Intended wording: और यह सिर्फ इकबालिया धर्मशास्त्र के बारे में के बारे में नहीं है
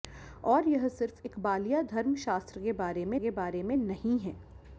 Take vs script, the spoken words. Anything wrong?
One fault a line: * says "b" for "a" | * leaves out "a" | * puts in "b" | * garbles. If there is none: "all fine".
all fine